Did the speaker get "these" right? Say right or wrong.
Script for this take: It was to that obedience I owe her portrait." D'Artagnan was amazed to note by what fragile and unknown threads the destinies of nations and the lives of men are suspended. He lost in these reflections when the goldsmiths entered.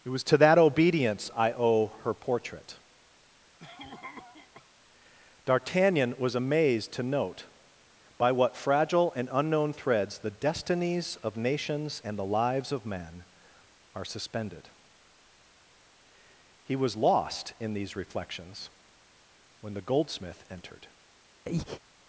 right